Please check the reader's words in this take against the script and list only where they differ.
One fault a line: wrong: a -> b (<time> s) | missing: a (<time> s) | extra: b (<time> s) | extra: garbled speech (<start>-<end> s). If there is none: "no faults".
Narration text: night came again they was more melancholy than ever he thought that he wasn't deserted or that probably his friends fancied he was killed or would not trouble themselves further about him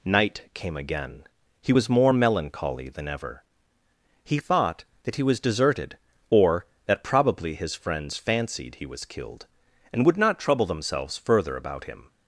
wrong: they -> he (1.6 s)
wrong: wasn't -> was (5.2 s)
wrong: or -> and (9.9 s)